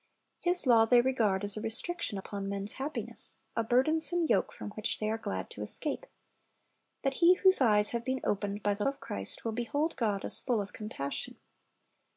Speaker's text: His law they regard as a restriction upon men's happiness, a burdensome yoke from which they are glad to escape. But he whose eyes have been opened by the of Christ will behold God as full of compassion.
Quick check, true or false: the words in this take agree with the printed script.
true